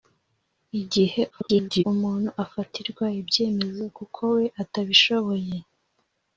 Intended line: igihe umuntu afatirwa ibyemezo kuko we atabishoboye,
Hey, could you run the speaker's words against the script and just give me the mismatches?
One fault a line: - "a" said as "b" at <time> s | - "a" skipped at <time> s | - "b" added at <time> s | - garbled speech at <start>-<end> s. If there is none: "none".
- garbled speech at 1.3-1.8 s